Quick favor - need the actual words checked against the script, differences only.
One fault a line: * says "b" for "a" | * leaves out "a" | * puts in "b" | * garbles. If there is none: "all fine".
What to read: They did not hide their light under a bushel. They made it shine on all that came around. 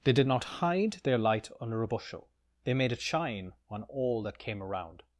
all fine